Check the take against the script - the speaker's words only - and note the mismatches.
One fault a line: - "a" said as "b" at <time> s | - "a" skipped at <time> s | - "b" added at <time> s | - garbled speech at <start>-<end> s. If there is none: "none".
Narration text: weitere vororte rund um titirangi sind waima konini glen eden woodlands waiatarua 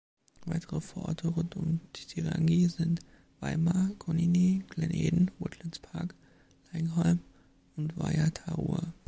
- "park laingholm und" added at 5.8 s